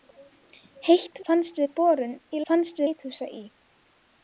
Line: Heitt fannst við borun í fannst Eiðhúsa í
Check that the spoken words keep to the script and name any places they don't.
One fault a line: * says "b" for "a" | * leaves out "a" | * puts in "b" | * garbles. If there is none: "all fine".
all fine